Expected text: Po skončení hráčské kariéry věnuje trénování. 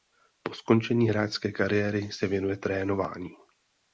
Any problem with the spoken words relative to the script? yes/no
yes